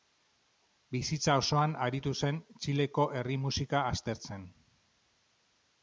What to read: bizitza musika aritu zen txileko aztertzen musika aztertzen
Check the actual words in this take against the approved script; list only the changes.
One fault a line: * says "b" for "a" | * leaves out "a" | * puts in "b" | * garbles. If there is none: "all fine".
* says "osoan" for "musika"
* says "herri" for "aztertzen"